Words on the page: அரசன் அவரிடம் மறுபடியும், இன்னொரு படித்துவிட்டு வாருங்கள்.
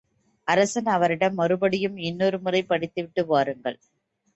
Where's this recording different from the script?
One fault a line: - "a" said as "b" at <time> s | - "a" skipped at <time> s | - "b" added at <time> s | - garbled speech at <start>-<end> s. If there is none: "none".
- "முறை" added at 2.4 s